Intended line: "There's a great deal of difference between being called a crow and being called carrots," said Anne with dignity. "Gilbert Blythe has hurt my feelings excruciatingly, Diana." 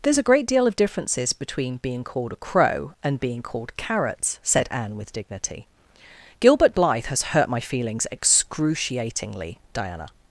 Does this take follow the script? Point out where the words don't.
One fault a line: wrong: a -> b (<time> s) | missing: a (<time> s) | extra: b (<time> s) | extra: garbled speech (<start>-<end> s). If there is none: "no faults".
wrong: difference -> differences (0.8 s)